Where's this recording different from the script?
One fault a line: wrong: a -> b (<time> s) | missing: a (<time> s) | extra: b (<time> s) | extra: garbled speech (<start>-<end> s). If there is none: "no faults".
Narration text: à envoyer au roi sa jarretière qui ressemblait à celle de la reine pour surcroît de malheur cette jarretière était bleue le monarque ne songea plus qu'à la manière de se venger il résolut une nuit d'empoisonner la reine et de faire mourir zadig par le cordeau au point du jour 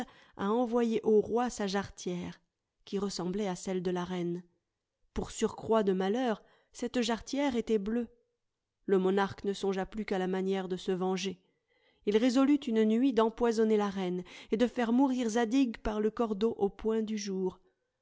no faults